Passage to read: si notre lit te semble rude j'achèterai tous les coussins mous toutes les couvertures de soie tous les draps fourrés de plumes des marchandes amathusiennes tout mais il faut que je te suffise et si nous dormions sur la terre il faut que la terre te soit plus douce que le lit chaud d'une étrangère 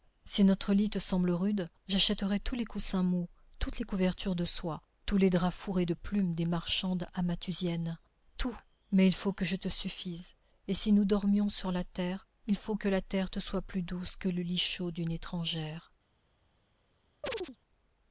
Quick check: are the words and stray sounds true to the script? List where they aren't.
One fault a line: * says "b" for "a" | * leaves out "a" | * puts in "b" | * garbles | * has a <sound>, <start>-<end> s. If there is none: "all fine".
* has a chirp, 17.2-17.6 s